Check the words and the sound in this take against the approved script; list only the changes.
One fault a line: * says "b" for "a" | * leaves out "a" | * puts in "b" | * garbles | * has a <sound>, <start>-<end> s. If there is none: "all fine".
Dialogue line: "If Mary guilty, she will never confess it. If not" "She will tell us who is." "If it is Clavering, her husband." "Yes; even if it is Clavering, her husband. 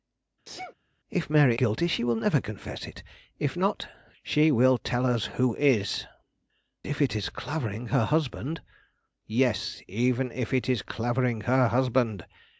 * has a sneeze, 0.5-0.8 s